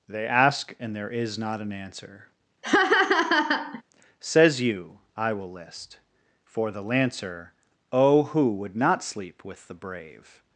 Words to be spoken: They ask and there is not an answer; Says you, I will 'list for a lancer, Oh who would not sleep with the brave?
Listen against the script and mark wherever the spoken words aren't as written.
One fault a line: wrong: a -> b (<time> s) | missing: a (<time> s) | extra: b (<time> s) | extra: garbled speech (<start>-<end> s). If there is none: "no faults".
wrong: a -> the (6.7 s)